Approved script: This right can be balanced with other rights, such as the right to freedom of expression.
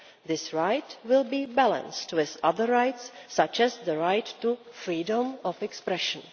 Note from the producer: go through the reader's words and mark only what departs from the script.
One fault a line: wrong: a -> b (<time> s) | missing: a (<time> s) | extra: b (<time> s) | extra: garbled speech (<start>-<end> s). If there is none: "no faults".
wrong: can -> will (1.1 s)